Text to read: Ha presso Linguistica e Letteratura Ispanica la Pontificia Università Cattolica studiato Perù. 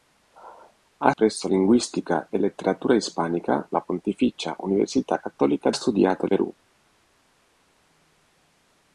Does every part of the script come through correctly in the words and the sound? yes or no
yes